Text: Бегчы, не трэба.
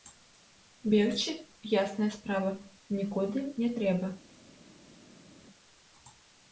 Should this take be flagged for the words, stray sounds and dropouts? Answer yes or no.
yes